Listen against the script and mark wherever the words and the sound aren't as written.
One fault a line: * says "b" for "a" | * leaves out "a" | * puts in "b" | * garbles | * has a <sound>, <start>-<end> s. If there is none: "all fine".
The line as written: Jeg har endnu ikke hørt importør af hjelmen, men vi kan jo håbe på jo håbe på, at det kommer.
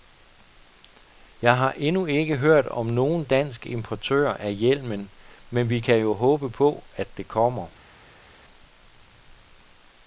* puts in "om nogen dansk"
* leaves out "jo håbe på"